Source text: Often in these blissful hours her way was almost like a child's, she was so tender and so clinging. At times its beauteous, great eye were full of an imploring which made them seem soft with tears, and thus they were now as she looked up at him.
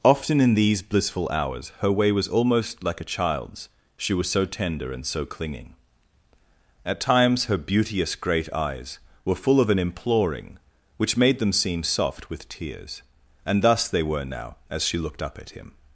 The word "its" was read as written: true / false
false